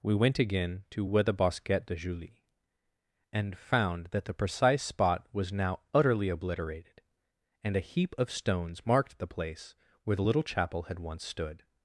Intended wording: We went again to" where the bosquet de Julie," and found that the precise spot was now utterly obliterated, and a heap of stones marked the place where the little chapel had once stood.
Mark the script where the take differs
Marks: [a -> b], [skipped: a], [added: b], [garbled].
We went again to" where the bosquet de Julie," and found that the precise spot was now utterly obliterated, and a heap of stones marked the place where the little chapel had once stood.